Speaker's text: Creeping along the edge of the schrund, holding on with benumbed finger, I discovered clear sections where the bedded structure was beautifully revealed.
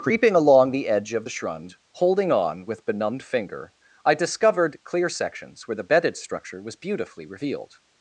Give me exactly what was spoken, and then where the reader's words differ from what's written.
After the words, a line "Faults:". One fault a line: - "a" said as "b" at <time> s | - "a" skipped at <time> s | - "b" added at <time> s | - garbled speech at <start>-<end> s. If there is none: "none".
Creeping along the edge of the schrund, holding on with benumbed finger, I discovered clear sections where the bedded structure was beautifully revealed.
Faults:
none